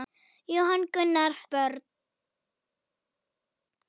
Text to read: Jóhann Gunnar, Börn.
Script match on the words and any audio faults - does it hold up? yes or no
yes